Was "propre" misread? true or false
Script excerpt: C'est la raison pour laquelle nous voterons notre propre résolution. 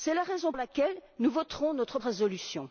true